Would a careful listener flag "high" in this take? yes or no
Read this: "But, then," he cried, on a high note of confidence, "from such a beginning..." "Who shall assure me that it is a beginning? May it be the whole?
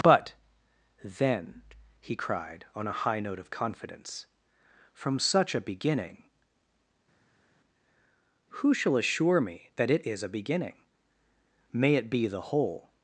no